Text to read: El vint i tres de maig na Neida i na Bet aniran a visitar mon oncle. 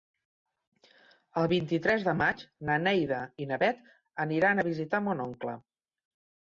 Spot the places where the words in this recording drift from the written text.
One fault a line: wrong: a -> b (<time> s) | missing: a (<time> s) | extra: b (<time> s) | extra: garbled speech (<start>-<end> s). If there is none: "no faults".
no faults